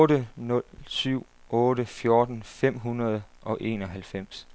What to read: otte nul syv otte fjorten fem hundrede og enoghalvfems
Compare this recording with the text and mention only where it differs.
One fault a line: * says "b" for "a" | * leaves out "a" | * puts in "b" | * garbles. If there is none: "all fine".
all fine